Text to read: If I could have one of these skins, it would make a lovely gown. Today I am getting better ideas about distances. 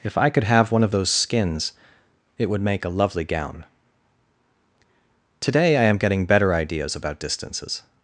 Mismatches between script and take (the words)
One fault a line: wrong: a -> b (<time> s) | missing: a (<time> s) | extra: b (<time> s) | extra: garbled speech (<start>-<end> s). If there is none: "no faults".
wrong: these -> those (0.9 s)